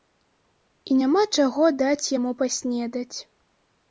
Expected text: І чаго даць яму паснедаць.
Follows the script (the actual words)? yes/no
no